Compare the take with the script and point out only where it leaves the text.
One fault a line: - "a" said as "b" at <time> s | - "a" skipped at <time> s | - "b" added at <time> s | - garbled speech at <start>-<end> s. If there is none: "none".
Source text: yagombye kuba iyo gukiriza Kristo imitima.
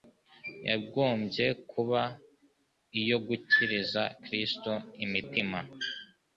none